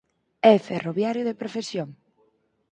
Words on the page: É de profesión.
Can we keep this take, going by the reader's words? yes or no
no